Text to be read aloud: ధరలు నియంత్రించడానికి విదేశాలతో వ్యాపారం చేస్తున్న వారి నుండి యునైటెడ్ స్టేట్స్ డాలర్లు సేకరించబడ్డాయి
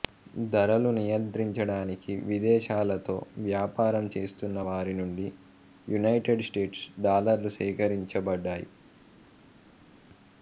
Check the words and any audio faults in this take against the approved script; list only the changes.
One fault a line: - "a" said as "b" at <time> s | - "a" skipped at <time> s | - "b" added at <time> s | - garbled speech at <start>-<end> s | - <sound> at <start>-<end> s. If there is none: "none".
none